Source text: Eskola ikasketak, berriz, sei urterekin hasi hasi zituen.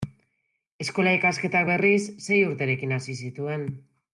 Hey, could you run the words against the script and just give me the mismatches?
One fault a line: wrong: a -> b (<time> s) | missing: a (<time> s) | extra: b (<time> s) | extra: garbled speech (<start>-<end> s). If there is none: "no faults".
missing: hasi (3.2 s)